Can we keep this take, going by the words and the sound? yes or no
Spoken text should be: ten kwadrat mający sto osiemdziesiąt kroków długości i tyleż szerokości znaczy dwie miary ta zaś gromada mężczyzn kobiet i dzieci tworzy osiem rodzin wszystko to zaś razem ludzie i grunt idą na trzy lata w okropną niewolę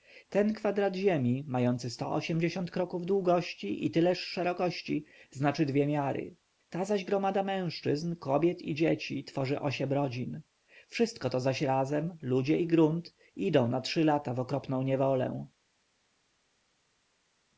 no